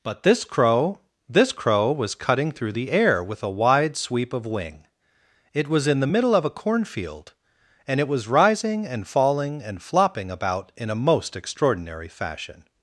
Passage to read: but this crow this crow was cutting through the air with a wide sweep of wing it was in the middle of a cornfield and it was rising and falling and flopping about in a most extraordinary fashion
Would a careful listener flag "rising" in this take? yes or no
no